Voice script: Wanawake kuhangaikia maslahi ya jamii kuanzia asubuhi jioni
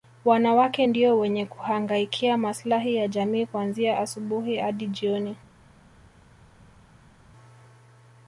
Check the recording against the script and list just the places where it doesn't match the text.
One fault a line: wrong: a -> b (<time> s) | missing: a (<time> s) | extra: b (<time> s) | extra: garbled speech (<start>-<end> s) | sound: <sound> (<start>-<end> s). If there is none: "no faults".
extra: ndio wenye (0.8 s)
extra: hadi (4.6 s)